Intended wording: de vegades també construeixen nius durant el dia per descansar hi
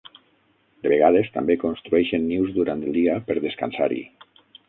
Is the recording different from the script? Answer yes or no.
no